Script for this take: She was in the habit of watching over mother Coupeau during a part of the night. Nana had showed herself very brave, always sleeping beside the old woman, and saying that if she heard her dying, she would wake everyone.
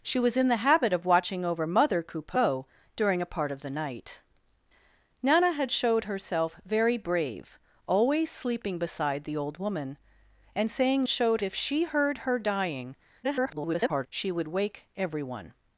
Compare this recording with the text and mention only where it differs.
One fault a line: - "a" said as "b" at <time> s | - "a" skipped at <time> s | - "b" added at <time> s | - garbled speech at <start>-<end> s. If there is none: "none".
- "that" said as "showed" at 11.1 s
- garbled speech at 13.2-14.1 s